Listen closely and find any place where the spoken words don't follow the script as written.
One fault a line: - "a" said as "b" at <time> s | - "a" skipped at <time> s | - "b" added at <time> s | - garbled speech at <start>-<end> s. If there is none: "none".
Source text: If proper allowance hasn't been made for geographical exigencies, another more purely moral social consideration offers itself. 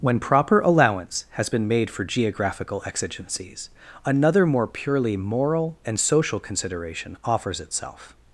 - "If" said as "When" at 0.0 s
- "hasn't" said as "has" at 1.4 s
- "and" added at 5.8 s